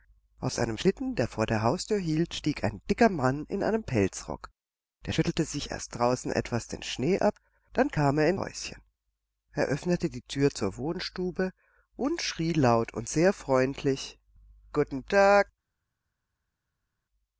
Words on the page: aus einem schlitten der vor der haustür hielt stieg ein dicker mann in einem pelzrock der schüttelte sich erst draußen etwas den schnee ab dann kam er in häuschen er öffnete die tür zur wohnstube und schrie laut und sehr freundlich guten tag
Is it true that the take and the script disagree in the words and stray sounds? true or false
false